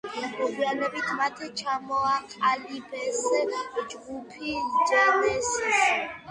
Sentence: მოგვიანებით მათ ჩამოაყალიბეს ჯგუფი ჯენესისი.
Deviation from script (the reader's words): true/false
false